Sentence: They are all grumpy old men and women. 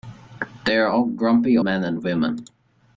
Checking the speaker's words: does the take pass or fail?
fail